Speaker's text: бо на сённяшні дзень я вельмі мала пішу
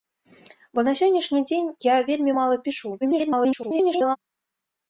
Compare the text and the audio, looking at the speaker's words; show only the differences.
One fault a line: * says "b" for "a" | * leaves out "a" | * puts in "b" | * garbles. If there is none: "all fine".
* garbles